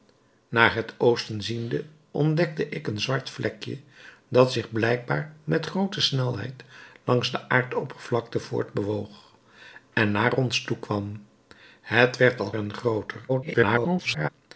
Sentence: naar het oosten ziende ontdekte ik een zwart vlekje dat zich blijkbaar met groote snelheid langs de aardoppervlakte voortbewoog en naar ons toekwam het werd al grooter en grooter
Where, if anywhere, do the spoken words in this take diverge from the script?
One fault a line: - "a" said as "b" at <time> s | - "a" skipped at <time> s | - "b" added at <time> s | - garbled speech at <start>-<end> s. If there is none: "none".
- "grooter" skipped at 12.5 s
- garbled speech at 13.3-14.3 s